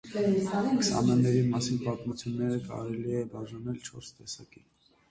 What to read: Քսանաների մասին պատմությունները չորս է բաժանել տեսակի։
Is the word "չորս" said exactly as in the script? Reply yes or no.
no